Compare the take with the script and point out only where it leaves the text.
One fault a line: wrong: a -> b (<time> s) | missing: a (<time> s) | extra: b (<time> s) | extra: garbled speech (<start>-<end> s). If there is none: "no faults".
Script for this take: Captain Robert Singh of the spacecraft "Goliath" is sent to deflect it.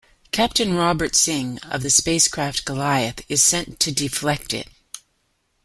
no faults